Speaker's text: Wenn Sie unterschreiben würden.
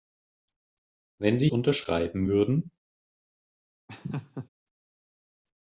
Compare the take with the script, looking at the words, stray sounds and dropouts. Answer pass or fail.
fail